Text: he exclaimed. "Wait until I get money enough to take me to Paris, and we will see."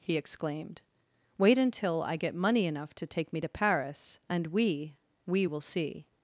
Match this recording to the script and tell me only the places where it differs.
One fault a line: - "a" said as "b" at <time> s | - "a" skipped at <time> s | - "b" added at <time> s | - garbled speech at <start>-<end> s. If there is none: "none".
- "we" added at 5.3 s